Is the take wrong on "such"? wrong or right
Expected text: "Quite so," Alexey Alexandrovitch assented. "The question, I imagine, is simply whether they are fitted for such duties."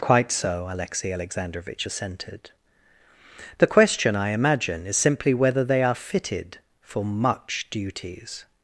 wrong